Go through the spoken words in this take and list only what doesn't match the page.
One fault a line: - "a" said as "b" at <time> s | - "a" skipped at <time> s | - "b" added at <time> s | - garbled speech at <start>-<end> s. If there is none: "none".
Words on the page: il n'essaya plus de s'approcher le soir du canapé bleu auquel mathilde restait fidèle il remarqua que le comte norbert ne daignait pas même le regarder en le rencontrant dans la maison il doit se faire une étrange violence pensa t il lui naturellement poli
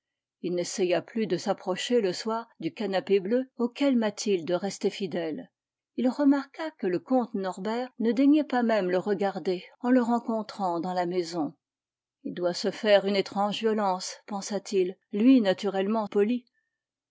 none